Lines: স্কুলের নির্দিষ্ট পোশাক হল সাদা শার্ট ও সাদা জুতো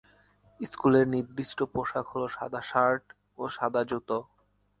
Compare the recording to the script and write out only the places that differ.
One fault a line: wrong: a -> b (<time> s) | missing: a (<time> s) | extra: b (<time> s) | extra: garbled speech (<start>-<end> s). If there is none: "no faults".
no faults